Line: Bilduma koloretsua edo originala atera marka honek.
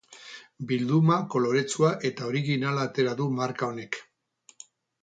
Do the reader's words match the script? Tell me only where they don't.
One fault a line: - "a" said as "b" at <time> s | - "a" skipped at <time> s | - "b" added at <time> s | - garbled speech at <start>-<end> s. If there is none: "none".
- "edo" said as "eta" at 2.1 s
- "du" added at 3.2 s